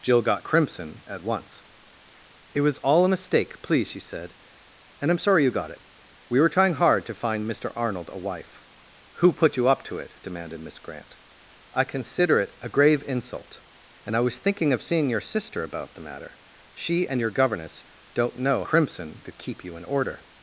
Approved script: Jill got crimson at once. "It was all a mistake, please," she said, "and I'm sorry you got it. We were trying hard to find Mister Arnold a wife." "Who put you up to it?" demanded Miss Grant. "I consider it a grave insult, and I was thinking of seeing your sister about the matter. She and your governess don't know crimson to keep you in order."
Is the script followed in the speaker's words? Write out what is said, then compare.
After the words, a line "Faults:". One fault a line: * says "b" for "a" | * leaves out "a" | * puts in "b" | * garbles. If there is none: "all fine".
Jill got crimson at once. "It was all a mistake, please," she said, "and I'm sorry you got it. We were trying hard to find Mister Arnold a wife." "Who put you up to it?" demanded Miss Grant. "I consider it a grave insult, and I was thinking of seeing your sister about the matter. She and your governess don't know crimson to keep you in order."
Faults:
all fine